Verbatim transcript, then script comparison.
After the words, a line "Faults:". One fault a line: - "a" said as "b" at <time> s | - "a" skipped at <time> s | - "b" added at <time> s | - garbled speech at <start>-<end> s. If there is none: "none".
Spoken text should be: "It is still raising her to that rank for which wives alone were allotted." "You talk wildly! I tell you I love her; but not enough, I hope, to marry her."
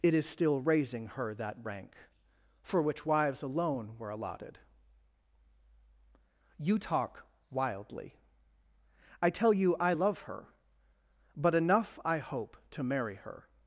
"It is still raising her that rank for which wives alone were allotted." "You talk wildly! I tell you I love her; but enough, I hope, to marry her."
Faults:
- "to" skipped at 1.3 s
- "not" skipped at 11.5 s